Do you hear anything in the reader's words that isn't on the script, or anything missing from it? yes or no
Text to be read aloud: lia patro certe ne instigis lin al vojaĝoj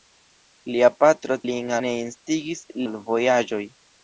yes